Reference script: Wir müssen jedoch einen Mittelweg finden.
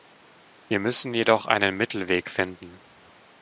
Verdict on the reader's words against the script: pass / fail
pass